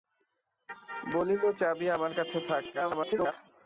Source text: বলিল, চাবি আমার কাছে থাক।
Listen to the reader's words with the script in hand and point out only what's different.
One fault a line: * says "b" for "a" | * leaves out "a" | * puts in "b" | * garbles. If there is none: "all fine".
* garbles